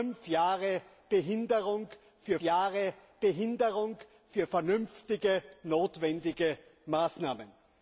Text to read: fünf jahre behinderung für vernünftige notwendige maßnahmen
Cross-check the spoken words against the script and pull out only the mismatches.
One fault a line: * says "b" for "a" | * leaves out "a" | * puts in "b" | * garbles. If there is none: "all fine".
* puts in "jahre behinderung für"